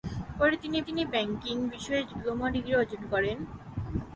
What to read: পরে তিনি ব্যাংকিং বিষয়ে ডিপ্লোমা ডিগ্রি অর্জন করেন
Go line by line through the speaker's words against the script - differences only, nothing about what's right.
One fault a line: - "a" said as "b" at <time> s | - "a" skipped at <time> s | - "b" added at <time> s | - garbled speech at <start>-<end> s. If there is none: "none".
- "তিনি" added at 0.8 s